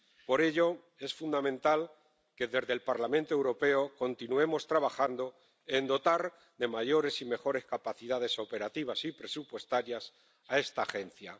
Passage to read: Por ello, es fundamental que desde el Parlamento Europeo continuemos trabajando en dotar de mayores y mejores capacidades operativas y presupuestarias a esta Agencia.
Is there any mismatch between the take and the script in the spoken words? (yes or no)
no